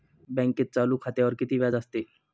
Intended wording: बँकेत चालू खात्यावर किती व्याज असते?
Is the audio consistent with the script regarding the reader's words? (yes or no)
yes